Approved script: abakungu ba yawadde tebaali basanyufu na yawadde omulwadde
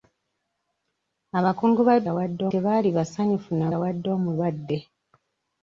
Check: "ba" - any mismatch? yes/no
no